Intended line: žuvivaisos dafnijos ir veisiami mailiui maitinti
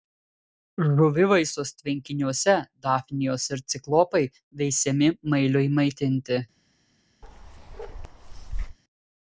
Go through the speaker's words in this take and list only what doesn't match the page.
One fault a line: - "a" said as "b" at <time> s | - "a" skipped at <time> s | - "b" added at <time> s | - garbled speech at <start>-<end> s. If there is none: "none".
- "tvenkiniuose" added at 1.8 s
- "ciklopai" added at 3.8 s